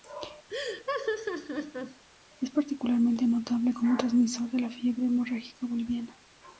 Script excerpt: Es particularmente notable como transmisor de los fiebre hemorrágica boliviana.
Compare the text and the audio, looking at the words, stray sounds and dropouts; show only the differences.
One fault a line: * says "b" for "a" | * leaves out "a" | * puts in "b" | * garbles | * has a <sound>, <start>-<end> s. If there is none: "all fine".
* has a laugh, 0.5-2.0 s
* says "la" for "los"